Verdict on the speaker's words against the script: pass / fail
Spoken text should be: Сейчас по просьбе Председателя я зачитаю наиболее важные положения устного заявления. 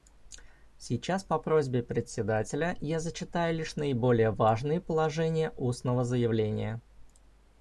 fail